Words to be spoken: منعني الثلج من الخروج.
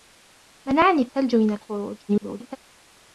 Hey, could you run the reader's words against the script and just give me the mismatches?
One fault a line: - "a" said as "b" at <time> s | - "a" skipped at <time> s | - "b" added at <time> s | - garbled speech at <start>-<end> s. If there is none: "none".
- garbled speech at 2.1-2.6 s